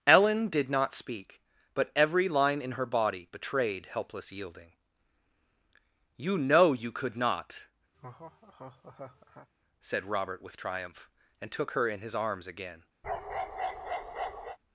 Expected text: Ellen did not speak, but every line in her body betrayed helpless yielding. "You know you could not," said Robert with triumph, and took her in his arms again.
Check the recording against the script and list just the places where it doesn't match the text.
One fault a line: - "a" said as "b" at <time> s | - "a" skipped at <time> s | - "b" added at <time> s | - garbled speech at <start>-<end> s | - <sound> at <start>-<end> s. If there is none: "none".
- laugh at 7.9-9.5 s
- bark at 13.0-14.6 s